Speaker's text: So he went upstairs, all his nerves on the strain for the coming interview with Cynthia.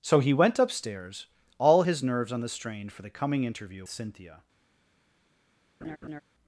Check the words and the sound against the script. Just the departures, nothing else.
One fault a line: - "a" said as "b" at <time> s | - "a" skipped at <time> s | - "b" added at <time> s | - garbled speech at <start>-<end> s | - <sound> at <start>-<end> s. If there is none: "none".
- "with" skipped at 3.8 s
- laugh at 5.8-6.2 s